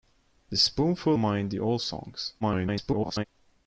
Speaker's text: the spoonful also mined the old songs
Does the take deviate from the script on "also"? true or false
true